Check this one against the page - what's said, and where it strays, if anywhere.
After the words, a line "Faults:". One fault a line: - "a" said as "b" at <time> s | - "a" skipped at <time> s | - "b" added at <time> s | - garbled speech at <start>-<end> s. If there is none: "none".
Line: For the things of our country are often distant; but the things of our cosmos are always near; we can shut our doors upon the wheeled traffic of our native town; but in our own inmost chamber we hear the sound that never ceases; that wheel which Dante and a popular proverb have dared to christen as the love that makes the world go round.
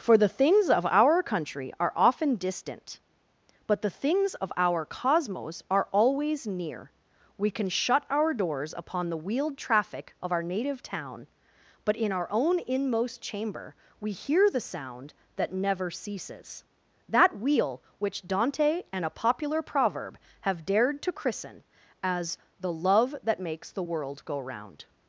For the things of our country are often distant; but the things of our cosmos are always near; we can shut our doors upon the wheeled traffic of our native town; but in our own inmost chamber we hear the sound that never ceases; that wheel which Dante and a popular proverb have dared to christen as the love that makes the world go round.
Faults:
none